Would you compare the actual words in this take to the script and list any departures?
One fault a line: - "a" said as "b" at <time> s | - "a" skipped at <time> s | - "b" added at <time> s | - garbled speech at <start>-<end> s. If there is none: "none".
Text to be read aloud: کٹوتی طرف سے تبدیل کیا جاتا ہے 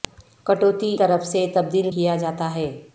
none